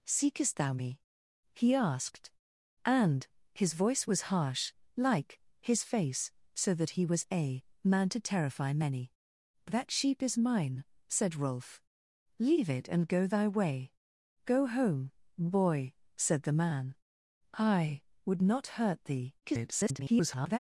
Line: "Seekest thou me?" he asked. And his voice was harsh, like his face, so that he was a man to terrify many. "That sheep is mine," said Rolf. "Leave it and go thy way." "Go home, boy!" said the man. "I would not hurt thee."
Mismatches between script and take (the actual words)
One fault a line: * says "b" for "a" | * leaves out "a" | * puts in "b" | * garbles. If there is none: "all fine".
* garbles